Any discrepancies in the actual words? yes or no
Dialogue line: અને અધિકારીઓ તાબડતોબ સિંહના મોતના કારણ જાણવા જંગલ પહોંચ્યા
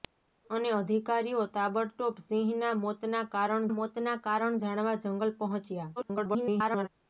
yes